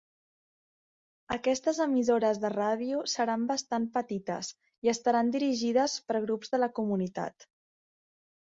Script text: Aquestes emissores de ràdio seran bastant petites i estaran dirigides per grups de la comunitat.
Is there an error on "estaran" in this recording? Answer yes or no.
no